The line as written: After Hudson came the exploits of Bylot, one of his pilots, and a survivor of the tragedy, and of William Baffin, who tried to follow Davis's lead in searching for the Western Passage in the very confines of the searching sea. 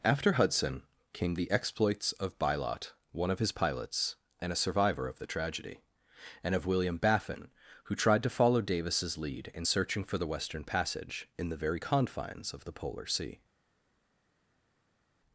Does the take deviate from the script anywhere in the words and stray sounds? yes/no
yes